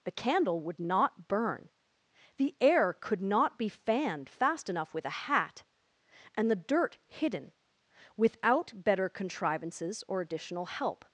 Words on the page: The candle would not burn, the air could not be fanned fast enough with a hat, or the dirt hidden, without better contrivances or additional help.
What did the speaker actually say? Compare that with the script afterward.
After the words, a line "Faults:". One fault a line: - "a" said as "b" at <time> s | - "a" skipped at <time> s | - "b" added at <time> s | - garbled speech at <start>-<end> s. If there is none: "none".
The candle would not burn, the air could not be fanned fast enough with a hat, and the dirt hidden, without better contrivances or additional help.
Faults:
- "or" said as "and" at 6.4 s